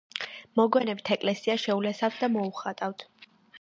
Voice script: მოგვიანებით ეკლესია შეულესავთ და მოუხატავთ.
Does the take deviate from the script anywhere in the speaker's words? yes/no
no